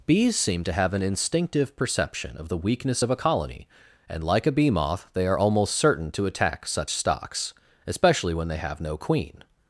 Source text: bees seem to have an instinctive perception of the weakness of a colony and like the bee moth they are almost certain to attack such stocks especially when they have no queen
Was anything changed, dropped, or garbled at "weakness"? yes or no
no